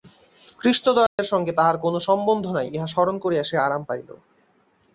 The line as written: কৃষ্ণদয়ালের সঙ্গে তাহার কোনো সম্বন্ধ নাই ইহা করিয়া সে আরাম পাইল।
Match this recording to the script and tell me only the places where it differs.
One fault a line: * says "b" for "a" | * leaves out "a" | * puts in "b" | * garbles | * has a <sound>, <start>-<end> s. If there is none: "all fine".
* has a dropout, 1.1-1.2 s
* puts in "স্মরণ"